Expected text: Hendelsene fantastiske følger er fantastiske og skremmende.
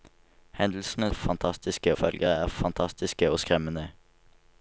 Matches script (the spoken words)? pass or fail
pass